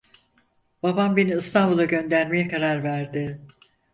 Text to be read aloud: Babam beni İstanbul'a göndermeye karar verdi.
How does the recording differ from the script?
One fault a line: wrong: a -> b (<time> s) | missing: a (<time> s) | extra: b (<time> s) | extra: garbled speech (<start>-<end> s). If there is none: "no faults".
no faults